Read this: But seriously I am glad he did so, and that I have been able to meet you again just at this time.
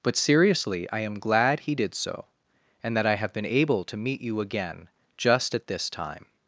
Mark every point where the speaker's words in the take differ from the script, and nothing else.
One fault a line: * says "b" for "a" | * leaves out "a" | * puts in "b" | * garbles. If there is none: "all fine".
all fine